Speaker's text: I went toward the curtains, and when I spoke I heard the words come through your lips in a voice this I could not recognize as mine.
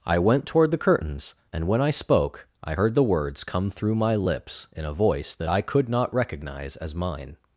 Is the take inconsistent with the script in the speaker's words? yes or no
yes